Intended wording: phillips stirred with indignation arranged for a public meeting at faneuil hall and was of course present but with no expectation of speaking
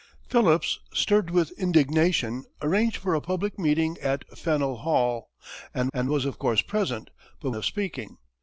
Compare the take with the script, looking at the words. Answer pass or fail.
fail